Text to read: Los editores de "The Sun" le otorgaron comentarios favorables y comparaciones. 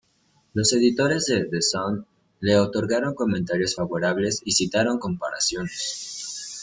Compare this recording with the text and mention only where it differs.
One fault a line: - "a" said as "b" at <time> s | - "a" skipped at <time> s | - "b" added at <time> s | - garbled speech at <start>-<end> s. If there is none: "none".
- "citaron" added at 4.5 s